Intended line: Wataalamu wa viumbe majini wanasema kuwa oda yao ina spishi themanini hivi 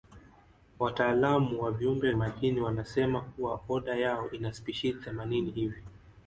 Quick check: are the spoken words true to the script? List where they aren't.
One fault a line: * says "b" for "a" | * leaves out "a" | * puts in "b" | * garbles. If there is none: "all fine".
all fine